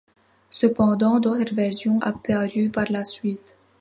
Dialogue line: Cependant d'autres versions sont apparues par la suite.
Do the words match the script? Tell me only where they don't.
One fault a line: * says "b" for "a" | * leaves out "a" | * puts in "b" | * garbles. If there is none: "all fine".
* leaves out "sont"